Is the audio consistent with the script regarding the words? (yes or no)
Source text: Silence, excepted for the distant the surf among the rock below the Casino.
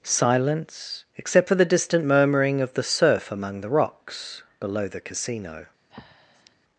no